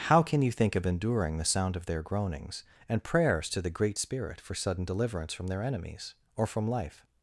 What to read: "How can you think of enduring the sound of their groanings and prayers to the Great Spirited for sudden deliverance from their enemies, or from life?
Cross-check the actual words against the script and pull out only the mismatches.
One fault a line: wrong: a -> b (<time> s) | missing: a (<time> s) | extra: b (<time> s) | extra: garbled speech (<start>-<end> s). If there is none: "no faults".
wrong: Spirited -> Spirit (4.0 s)